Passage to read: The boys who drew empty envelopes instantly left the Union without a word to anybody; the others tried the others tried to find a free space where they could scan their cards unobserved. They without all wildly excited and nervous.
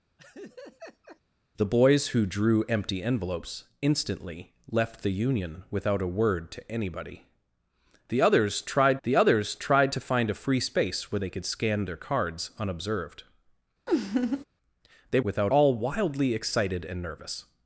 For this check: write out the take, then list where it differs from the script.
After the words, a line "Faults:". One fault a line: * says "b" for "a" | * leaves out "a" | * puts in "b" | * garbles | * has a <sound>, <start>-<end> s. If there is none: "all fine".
The boys who drew empty envelopes instantly left the Union without a word to anybody; the others tried the others tried to find a free space where they could scan their cards unobserved. They without all wildly excited and nervous.
Faults:
* has a laugh, 0.2-1.2 s
* has a laugh, 13.9-14.4 s